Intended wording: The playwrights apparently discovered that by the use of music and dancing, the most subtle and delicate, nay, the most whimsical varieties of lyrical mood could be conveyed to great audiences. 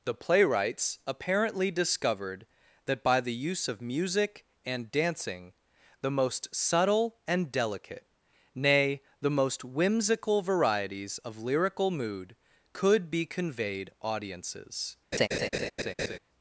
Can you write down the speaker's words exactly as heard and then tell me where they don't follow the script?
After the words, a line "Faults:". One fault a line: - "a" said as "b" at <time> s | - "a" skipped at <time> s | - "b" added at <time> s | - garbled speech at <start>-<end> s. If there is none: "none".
The playwrights apparently discovered that by the use of music and dancing, the most subtle and delicate, nay, the most whimsical varieties of lyrical mood could be conveyed audiences.
Faults:
- "to great" skipped at 13.9 s